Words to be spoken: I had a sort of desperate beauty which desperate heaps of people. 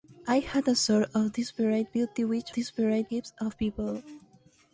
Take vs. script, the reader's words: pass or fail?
pass